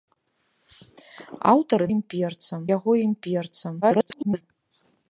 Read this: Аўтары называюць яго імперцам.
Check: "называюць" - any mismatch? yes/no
yes